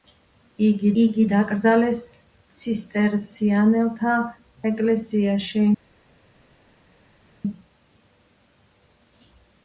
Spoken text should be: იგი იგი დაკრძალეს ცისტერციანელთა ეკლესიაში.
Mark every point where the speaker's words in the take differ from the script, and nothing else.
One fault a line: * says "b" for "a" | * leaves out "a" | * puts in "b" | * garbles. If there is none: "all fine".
all fine